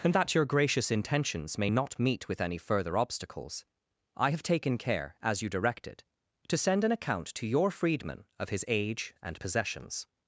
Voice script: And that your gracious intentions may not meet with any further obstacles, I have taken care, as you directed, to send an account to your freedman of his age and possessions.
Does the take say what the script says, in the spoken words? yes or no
yes